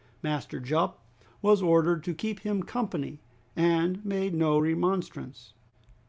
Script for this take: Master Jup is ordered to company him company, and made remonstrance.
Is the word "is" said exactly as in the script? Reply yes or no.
no